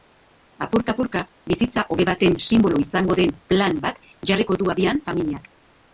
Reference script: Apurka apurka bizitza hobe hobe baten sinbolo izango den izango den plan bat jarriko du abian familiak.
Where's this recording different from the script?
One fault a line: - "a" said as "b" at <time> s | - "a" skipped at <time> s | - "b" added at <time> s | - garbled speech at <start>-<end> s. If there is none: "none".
- "hobe" skipped at 2.1 s
- "izango den" skipped at 3.4 s